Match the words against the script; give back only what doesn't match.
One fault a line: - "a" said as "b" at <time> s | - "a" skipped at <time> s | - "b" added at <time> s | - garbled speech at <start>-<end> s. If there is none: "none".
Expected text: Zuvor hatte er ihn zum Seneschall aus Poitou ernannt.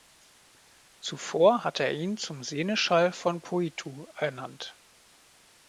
- "aus" said as "von" at 3.1 s